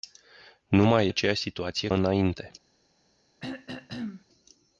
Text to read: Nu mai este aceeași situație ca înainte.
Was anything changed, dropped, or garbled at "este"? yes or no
yes